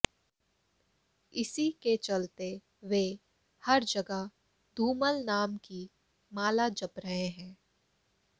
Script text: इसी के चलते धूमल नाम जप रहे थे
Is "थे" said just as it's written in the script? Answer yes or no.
no